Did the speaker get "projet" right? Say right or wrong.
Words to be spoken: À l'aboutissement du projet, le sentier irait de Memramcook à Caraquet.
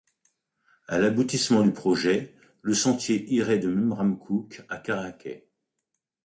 right